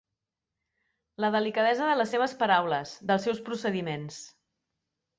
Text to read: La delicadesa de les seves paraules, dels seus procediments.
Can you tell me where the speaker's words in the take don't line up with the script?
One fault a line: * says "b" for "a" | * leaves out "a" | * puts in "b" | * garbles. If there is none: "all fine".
all fine